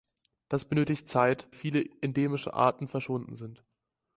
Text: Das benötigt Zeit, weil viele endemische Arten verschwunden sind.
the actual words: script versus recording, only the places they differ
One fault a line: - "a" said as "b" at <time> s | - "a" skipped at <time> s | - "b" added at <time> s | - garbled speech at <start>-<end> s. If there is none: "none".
- "weil" skipped at 1.5 s